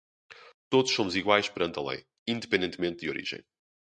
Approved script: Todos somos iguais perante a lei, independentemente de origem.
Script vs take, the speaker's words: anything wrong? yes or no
no